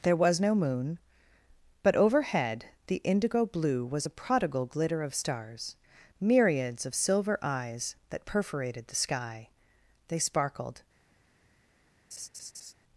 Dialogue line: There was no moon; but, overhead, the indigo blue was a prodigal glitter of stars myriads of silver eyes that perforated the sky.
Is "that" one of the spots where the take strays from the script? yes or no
no